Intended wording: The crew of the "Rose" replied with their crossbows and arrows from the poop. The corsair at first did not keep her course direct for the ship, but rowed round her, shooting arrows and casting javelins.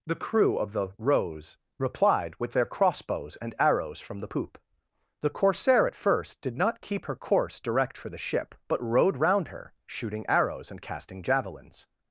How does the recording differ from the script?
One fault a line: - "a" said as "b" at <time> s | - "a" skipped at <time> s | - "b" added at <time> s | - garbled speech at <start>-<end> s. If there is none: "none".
none